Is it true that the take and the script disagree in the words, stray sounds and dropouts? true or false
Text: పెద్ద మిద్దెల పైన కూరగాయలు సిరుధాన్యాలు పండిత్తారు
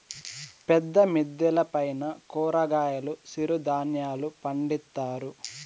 false